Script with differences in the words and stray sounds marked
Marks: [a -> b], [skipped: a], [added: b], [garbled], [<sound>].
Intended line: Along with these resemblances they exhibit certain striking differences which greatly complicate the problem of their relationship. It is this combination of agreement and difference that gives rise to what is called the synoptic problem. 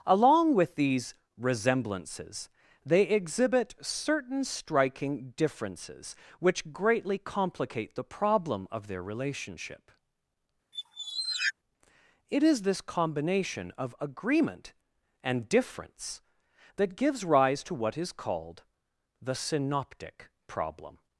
Along with these resemblances they exhibit certain striking differences which greatly complicate the problem of their relationship. [squeak] It is this combination of agreement and difference that gives rise to what is called the synoptic problem.